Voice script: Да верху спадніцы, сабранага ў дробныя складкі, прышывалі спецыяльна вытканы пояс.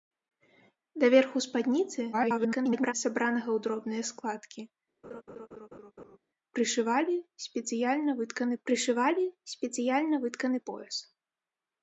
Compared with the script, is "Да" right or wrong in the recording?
right